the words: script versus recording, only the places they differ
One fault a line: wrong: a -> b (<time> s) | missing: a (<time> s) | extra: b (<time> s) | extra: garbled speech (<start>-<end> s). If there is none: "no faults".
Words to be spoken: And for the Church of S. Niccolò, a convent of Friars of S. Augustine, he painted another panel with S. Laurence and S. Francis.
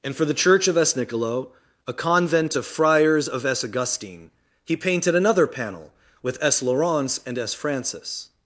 no faults